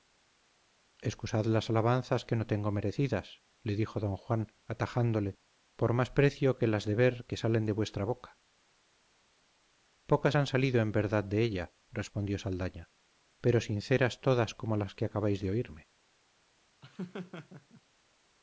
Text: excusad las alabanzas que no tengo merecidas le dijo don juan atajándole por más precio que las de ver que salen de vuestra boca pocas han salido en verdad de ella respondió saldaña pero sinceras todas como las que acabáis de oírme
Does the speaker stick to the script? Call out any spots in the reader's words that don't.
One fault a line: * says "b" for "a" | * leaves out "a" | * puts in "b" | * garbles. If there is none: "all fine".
all fine